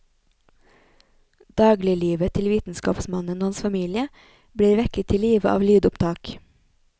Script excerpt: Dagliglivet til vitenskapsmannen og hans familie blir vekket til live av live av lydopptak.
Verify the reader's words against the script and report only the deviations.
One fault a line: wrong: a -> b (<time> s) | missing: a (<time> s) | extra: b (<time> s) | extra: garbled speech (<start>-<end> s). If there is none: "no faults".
missing: live av (5.7 s)